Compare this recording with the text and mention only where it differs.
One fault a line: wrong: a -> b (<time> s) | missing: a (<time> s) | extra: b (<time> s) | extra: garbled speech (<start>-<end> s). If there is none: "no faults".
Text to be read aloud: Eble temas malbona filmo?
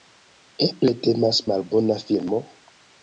no faults